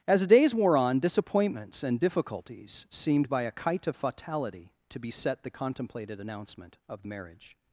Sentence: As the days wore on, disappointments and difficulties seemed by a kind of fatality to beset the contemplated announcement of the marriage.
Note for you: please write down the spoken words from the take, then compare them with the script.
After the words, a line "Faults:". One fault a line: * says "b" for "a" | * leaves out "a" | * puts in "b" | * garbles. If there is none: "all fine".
As the days wore on, disappointments and difficulties seemed by a kite of fatality to beset the contemplated announcement of the marriage.
Faults:
* says "kite" for "kind"